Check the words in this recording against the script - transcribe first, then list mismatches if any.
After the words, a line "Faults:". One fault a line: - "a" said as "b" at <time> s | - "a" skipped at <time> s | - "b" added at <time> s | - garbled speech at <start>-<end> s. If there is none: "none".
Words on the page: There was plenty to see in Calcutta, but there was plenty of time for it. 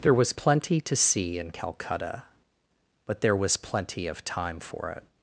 There was plenty to see in Calcutta, but there was plenty of time for it.
Faults:
none